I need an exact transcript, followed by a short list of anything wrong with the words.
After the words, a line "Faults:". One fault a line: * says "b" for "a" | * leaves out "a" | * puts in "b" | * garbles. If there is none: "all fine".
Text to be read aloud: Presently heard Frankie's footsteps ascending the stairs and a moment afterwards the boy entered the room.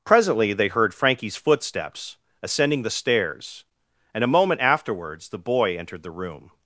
Presently they heard Frankie's footsteps ascending the stairs and a moment afterwards the boy entered the room.
Faults:
* puts in "they"